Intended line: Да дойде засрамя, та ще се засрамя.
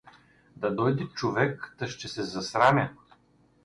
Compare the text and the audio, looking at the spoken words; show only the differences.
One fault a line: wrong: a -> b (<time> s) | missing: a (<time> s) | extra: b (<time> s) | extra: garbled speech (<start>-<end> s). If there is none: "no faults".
wrong: засрамя -> човек (1.1 s)